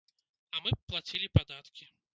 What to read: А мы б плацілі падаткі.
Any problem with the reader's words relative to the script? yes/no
no